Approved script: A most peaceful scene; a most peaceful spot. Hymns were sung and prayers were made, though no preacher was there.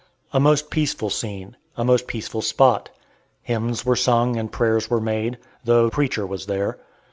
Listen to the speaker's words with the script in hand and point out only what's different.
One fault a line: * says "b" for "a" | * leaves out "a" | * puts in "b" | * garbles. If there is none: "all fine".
* leaves out "no"